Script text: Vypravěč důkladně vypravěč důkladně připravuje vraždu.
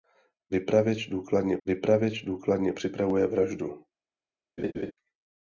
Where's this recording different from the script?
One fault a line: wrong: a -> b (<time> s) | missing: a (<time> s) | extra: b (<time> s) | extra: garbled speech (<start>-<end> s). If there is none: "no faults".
no faults